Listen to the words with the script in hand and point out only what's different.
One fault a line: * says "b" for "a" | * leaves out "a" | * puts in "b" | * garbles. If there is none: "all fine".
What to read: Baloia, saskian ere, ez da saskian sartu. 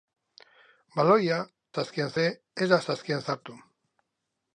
all fine